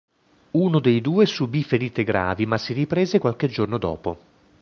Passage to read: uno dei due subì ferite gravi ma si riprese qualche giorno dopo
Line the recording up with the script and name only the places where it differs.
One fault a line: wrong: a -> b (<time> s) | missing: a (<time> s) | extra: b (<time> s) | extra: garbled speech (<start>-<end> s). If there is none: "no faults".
no faults